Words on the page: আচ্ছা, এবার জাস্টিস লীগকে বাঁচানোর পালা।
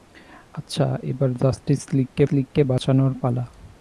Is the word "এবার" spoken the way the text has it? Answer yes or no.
yes